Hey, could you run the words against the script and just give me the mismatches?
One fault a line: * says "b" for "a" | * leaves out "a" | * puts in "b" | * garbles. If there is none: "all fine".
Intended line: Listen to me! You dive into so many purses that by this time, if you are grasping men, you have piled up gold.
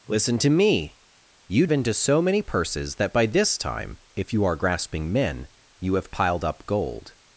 * leaves out "dive"